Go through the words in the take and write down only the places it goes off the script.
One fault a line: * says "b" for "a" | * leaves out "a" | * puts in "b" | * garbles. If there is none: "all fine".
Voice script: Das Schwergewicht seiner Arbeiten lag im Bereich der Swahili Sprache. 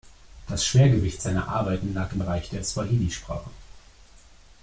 all fine